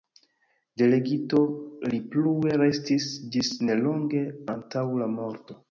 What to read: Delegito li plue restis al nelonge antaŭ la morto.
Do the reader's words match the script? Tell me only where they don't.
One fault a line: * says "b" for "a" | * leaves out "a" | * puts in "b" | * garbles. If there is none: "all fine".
* says "ĝis" for "al"